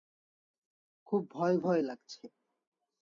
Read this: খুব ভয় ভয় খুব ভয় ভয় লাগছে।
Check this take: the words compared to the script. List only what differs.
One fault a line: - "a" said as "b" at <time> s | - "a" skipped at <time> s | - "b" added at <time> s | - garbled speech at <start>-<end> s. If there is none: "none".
- "খুব ভয় ভয়" skipped at 1.8 s